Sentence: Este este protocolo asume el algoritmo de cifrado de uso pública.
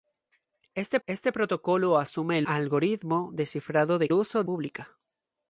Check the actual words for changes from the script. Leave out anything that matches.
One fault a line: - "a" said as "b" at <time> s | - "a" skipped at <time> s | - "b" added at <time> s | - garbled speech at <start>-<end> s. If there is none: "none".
none